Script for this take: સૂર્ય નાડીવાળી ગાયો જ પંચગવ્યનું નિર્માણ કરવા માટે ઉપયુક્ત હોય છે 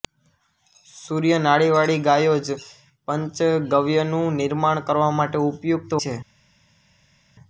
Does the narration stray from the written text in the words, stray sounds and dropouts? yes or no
yes